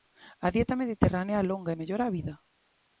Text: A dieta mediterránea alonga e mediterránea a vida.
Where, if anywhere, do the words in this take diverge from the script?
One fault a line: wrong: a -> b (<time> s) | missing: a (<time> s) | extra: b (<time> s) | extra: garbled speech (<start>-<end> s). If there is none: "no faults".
wrong: mediterránea -> mellora (1.8 s)